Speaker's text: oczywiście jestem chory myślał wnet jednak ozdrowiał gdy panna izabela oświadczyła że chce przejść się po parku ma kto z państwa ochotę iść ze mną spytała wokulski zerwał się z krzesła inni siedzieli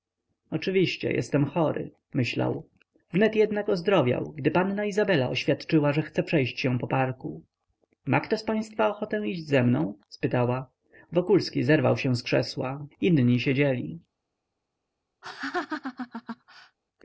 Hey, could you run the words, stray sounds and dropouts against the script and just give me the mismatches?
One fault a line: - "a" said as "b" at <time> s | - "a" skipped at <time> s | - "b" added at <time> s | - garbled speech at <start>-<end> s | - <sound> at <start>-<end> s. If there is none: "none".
- laugh at 15.2-16.8 s